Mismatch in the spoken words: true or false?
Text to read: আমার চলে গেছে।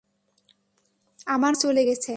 false